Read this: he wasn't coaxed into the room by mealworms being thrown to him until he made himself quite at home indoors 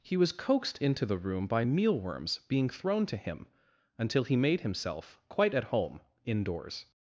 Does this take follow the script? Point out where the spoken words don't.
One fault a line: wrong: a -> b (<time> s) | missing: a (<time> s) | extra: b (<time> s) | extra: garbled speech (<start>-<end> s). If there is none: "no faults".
wrong: wasn't -> was (0.2 s)